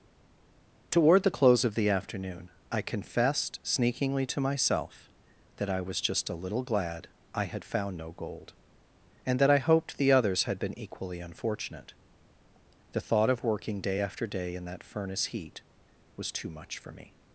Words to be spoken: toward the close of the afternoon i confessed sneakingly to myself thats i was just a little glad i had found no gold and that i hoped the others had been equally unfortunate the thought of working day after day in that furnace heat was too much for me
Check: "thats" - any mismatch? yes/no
yes